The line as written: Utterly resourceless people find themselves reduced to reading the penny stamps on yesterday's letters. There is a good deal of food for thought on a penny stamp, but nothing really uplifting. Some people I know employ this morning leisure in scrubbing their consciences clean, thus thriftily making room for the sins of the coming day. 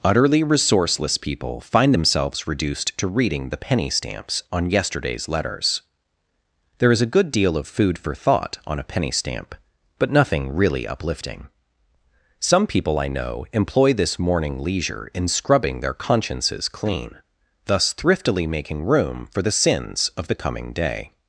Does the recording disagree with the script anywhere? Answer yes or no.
no